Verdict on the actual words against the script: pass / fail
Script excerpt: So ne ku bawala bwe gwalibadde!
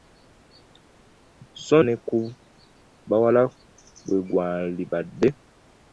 pass